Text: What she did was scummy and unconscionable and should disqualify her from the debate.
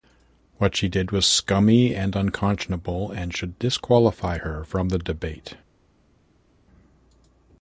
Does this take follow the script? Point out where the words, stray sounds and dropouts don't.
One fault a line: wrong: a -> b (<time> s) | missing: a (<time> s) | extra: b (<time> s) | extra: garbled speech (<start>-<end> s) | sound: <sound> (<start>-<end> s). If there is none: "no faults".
no faults